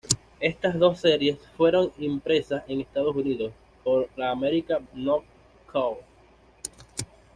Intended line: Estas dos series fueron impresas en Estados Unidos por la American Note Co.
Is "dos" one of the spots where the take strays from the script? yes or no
no